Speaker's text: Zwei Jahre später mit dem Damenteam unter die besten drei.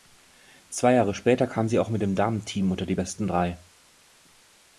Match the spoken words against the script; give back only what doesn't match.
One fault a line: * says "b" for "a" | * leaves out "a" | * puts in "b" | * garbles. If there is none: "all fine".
* puts in "kam sie auch"